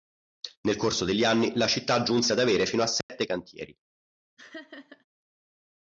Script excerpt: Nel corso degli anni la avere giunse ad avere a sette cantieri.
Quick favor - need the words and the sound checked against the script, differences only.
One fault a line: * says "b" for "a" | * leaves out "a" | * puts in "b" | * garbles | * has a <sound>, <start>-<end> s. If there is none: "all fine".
* says "città" for "avere"
* puts in "fino"
* has a dropout, 3.0-3.1 s
* has a laugh, 4.4-5.0 s